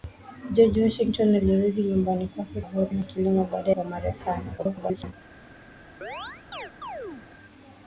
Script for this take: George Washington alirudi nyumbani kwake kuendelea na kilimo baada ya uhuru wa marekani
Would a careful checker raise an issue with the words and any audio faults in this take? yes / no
yes